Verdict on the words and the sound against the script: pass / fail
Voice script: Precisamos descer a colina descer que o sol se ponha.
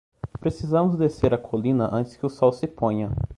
fail